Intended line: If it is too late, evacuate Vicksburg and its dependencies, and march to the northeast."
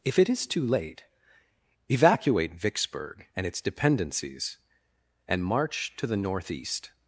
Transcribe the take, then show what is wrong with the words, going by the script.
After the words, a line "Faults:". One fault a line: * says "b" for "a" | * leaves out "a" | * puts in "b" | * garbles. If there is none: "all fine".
If it is too late, evacuate Vicksburg and its dependencies, and march to the northeast."
Faults:
all fine